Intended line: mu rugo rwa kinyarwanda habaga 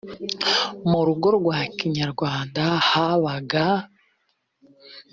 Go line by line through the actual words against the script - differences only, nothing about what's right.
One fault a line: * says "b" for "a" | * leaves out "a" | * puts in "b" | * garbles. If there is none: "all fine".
all fine